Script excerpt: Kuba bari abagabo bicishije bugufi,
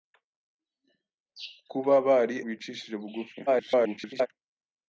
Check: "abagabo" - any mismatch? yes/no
yes